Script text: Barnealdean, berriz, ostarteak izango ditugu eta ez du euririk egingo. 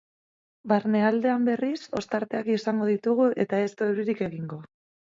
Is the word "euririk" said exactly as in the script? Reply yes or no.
yes